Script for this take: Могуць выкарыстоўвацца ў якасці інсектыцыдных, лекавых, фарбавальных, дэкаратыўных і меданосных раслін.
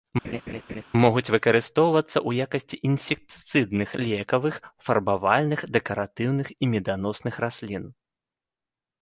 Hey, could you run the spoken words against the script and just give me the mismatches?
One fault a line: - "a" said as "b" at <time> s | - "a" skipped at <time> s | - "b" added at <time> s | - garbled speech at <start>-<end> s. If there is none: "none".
none